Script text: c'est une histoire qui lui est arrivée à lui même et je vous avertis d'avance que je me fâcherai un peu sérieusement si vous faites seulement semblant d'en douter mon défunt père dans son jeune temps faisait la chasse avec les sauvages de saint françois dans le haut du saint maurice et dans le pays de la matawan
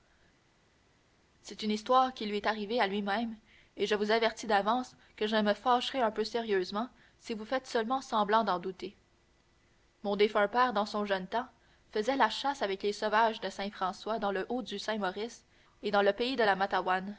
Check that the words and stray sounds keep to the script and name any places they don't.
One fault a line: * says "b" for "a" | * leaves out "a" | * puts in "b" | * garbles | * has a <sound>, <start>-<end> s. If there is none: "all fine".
all fine